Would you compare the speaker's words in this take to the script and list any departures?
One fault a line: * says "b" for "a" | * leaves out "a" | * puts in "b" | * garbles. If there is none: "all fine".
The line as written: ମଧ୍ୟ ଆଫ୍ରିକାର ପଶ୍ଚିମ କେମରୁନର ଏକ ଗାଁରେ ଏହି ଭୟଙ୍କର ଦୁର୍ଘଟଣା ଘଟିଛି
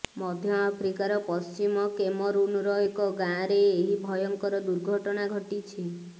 all fine